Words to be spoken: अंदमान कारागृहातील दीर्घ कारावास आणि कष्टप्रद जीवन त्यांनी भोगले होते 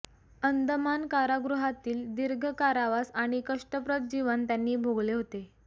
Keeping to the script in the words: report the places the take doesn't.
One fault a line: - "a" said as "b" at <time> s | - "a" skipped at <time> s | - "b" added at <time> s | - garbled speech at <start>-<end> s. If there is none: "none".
none